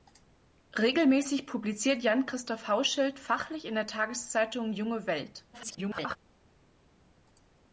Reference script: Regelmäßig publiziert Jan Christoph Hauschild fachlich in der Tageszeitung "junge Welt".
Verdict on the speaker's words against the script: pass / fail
fail